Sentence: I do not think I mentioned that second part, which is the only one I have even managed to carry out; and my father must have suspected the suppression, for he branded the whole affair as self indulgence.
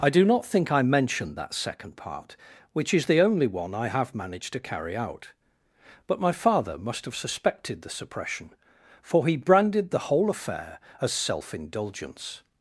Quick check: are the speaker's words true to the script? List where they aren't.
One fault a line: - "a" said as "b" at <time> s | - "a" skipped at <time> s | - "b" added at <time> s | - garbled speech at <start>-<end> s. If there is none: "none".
- "even" skipped at 4.1 s
- "and" said as "but" at 6.1 s